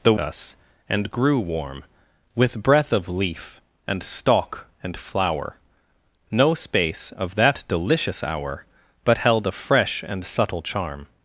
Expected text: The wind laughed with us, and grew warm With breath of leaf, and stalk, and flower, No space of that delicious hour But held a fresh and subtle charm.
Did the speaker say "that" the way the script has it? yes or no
yes